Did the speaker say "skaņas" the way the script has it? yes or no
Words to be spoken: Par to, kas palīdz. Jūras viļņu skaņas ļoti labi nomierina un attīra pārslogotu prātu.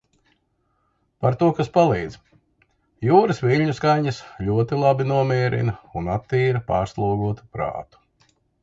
yes